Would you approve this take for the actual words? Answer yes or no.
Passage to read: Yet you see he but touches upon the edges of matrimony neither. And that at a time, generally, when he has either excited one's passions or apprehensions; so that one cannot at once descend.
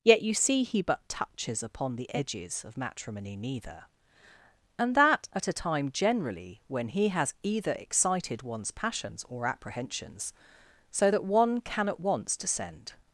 no